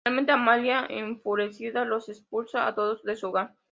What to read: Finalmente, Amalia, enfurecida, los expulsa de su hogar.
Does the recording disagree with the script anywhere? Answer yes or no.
yes